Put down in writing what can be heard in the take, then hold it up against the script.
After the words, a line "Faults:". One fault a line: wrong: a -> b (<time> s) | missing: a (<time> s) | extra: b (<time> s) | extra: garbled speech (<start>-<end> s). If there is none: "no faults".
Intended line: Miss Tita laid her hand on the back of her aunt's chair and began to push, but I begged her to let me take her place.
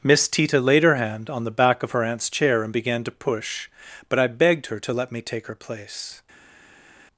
Miss Tita laid her hand on the back of her aunt's chair and began to push, but I begged her to let me take her place.
Faults:
no faults